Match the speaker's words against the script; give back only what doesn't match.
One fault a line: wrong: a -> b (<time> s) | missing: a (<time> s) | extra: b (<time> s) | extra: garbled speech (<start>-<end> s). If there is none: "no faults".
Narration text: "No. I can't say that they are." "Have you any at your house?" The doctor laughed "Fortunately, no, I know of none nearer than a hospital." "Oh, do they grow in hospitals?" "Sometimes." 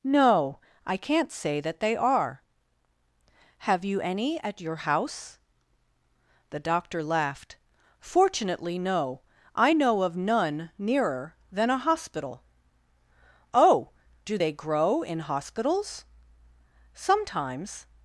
no faults